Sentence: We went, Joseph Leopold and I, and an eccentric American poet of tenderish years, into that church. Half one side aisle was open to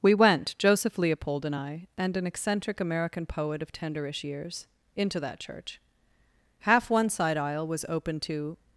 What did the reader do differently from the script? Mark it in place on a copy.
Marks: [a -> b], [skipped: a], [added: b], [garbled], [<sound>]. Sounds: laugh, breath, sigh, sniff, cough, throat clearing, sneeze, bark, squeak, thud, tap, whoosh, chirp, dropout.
We went, Joseph Leopold and I, and an eccentric American poet of tenderish years, into that church. Half one side aisle was open to